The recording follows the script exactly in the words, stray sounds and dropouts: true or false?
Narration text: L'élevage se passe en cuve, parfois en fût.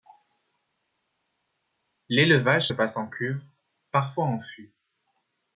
true